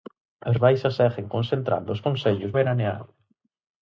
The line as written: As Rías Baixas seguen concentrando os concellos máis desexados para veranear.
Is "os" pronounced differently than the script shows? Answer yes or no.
no